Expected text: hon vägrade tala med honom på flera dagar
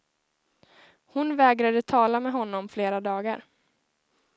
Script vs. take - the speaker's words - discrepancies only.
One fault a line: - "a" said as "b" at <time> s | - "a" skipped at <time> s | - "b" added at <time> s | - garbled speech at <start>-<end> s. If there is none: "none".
- "på" skipped at 2.7 s